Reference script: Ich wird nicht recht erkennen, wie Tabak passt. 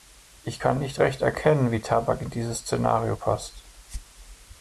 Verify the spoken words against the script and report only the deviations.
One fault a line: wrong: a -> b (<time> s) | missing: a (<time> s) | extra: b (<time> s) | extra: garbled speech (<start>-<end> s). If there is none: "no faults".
wrong: wird -> kann (0.6 s)
extra: in dieses Szenario (2.2 s)